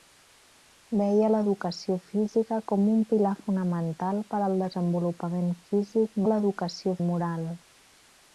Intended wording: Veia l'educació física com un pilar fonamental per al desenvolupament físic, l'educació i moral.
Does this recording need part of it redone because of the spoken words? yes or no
no